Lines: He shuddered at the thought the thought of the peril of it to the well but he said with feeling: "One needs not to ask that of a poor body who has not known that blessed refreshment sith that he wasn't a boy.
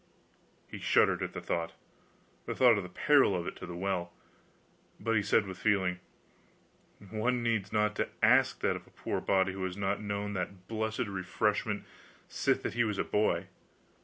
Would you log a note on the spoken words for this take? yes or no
yes